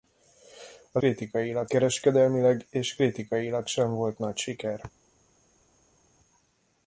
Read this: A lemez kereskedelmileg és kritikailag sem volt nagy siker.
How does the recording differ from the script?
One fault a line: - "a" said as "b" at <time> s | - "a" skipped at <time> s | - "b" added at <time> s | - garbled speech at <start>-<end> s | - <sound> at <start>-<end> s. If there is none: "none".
- "lemez" said as "kritikailag" at 1.0 s